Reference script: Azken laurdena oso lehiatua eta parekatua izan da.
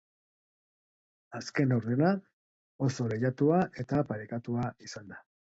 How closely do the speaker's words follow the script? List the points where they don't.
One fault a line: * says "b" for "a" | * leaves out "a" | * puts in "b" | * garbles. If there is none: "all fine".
all fine